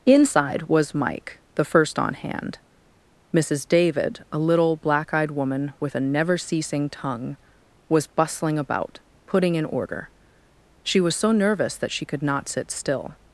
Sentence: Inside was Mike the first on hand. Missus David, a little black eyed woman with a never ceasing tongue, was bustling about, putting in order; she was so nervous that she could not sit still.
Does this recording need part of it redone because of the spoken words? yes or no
no